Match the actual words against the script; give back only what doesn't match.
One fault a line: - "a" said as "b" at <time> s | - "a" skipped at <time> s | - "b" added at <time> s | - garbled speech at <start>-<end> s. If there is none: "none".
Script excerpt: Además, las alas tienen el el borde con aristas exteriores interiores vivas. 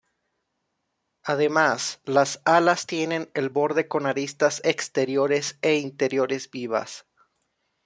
- "el" skipped at 3.5 s
- "e" added at 5.6 s